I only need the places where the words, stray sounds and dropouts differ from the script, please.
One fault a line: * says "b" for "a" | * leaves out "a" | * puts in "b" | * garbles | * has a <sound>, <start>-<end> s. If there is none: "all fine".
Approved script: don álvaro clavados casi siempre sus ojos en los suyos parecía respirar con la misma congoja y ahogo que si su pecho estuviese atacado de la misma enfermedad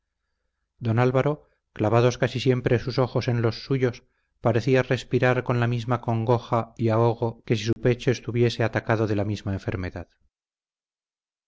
* has a dropout, 7.7-7.8 s